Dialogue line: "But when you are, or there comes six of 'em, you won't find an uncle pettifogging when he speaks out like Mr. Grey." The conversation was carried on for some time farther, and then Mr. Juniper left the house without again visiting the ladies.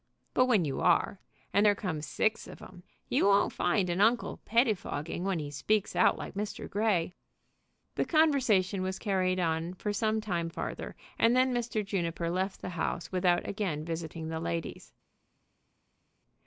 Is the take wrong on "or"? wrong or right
wrong